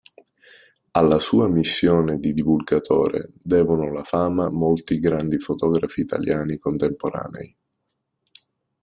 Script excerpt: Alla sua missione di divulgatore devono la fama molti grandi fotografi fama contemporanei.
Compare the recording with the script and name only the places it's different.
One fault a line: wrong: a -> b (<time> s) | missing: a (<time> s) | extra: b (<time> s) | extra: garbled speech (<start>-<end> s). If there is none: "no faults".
wrong: fama -> italiani (6.0 s)